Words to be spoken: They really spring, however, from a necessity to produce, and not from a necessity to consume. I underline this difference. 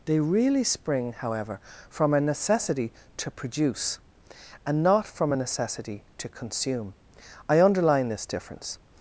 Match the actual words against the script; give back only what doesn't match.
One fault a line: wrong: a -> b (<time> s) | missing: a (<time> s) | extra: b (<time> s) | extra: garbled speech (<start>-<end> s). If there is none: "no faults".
no faults